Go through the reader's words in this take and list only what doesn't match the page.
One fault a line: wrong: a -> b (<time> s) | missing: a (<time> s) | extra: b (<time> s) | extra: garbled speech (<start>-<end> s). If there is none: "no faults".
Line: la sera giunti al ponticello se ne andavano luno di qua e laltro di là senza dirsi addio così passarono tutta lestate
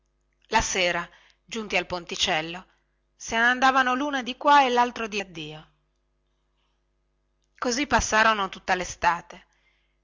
missing: là senza dirsi (5.2 s)